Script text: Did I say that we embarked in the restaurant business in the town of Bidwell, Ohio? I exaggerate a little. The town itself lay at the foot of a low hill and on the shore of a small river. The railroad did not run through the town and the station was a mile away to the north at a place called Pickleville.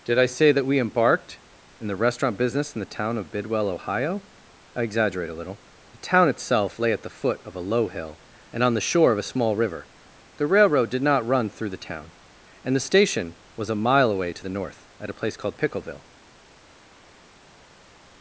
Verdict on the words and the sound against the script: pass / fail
pass